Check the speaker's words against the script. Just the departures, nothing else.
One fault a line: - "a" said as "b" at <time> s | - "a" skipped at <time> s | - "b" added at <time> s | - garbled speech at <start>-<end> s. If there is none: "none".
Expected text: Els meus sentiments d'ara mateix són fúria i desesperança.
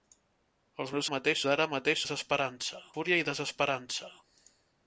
- "sentiments" said as "mateix" at 1.1 s
- "són" said as "desesperança" at 2.0 s